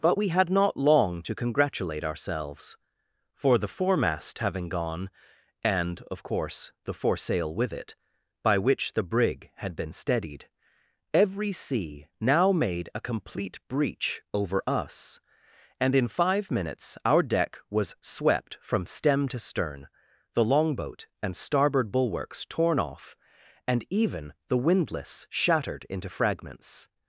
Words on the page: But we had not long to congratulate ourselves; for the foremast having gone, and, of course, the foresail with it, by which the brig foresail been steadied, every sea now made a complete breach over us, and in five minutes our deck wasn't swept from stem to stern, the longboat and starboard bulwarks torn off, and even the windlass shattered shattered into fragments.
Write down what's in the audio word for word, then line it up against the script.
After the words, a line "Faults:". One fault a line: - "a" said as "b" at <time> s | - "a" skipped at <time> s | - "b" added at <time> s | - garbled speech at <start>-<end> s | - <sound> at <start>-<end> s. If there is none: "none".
But we had not long to congratulate ourselves; for the foremast having gone, and, of course, the foresail with it, by which the brig had been steadied, every sea now made a complete breach over us, and in five minutes our deck was swept from stem to stern, the longboat and starboard bulwarks torn off, and even the windlass shattered into fragments.
Faults:
- "foresail" said as "had" at 9.6 s
- "wasn't" said as "was" at 17.7 s
- "shattered" skipped at 25.9 s